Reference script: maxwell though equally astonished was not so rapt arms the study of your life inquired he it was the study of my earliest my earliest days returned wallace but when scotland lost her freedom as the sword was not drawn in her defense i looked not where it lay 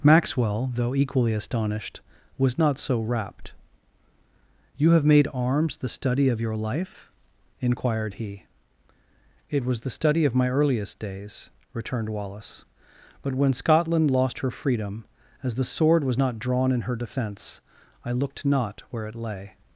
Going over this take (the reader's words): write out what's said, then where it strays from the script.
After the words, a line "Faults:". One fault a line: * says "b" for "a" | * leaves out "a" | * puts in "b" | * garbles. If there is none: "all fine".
maxwell though equally astonished was not so rapt you have made arms the study of your life inquired he it was the study of my earliest days returned wallace but when scotland lost her freedom as the sword was not drawn in her defense i looked not where it lay
Faults:
* puts in "you have made"
* leaves out "my earliest"